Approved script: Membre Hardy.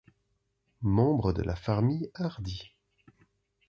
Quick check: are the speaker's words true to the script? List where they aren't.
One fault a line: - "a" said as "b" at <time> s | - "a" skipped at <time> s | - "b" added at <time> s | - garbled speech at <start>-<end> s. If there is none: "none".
- "de la famille" added at 1.3 s